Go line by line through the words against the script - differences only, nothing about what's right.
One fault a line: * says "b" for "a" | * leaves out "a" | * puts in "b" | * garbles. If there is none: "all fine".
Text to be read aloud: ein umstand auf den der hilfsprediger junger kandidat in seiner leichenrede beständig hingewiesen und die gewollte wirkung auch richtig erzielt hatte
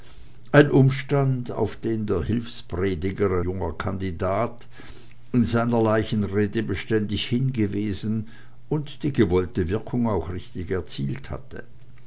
all fine